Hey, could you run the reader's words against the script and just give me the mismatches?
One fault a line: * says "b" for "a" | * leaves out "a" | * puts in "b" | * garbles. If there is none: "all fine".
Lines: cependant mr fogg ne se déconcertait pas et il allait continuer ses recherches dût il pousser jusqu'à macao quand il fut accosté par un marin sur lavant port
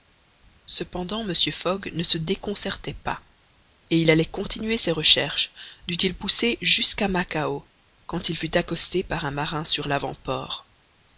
all fine